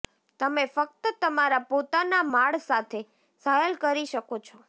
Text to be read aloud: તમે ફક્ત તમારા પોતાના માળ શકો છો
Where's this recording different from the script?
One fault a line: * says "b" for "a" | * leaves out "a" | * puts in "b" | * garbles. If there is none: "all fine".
* puts in "સાથે સહેલ કરી"